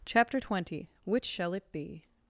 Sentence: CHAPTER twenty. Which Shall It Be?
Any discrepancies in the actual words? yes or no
no